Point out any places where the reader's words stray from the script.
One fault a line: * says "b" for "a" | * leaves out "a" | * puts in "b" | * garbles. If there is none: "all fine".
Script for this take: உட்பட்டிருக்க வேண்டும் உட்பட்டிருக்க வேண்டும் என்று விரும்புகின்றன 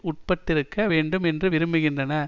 * leaves out "உட்பட்டிருக்க வேண்டும்"